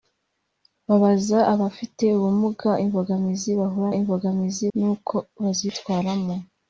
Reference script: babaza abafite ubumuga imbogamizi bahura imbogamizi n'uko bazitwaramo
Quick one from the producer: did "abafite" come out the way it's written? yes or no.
yes